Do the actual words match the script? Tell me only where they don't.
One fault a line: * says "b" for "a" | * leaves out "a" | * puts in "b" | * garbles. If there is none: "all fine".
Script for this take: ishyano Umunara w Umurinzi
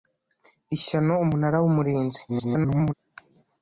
* garbles